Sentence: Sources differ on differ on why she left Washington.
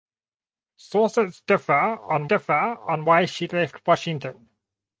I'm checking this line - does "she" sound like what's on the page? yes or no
yes